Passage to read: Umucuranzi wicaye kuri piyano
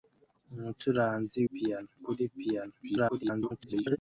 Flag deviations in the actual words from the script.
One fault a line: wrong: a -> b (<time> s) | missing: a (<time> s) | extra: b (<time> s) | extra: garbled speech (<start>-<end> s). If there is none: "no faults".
wrong: wicaye -> piyano (1.5 s)
extra: garbled speech (2.8-4.0 s)